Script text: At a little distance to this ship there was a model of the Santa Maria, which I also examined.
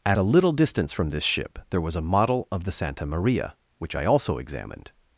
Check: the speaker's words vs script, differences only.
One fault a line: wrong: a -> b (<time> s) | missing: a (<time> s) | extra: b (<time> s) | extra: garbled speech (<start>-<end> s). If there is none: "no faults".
wrong: to -> from (0.9 s)